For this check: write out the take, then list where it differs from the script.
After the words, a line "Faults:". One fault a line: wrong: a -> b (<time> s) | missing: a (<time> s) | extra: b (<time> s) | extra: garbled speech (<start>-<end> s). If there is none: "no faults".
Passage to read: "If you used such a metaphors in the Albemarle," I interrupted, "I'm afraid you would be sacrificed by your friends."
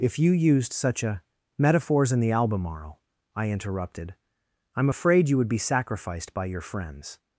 "If you used such a metaphors in the Albemarle," I interrupted, "I'm afraid you would be sacrificed by your friends."
Faults:
no faults